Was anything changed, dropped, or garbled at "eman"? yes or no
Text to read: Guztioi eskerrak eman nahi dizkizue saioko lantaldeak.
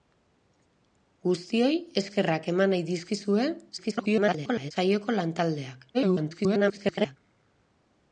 no